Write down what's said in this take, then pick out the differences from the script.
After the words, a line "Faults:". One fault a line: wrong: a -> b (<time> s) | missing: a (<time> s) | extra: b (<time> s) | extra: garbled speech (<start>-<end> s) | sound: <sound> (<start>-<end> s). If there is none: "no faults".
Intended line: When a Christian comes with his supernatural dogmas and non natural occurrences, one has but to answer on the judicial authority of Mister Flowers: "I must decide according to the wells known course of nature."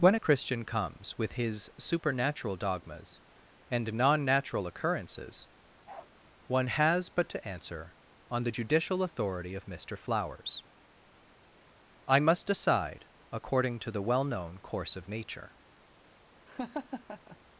When a Christian comes with his supernatural dogmas and non natural occurrences, one has but to answer on the judicial authority of Mister Flowers: "I must decide according to the well known course of nature."
Faults:
sound: bark (5.9-6.1 s)
wrong: wells -> well (14.0 s)
sound: laugh (16.5-17.4 s)